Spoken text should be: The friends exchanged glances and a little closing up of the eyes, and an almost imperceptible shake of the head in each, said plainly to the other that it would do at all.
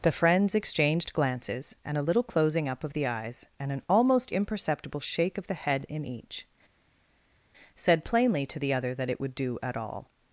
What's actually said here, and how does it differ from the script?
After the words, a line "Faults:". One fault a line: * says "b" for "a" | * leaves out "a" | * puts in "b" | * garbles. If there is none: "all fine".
The friends exchanged glances and a little closing up of the eyes, and an almost imperceptible shake of the head in each, said plainly to the other that it would do at all.
Faults:
all fine